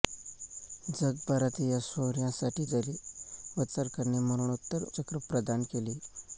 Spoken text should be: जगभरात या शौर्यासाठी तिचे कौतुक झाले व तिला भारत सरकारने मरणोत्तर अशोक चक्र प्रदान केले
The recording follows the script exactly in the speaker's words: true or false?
false